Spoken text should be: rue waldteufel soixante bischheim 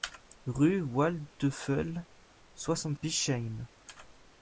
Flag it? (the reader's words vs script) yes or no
no